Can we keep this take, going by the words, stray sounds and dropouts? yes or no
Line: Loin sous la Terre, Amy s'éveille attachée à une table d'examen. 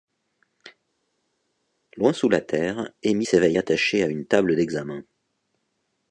yes